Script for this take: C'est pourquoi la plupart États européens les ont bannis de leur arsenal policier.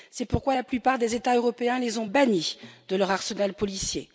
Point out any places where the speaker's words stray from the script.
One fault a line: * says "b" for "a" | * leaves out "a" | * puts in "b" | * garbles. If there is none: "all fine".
* puts in "des"